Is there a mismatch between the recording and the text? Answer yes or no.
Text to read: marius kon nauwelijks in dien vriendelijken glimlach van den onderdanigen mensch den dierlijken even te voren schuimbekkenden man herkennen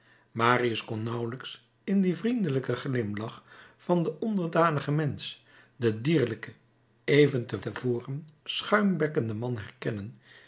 yes